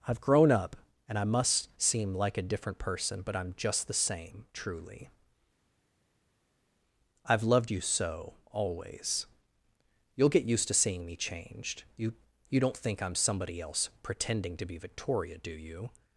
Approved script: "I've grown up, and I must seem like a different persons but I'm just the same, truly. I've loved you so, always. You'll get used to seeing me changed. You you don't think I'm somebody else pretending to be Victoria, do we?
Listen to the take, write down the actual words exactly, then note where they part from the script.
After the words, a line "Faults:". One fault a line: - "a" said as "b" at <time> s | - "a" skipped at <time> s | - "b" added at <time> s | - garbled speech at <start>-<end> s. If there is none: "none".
"I've grown up, and I must seem like a different person but I'm just the same, truly. I've loved you so, always. You'll get used to seeing me changed. You you don't think I'm somebody else pretending to be Victoria, do you?
Faults:
- "persons" said as "person" at 2.8 s
- "we" said as "you" at 15.5 s